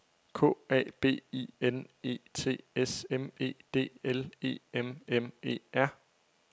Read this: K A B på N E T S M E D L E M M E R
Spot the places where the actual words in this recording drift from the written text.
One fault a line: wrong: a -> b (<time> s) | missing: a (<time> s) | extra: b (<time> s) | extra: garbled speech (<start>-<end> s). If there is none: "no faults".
wrong: på -> I (1.3 s)